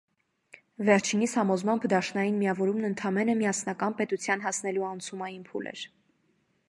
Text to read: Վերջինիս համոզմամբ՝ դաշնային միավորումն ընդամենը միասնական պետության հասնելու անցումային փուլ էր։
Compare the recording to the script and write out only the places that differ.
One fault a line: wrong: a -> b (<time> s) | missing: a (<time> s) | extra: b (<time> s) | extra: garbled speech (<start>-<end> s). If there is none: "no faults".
no faults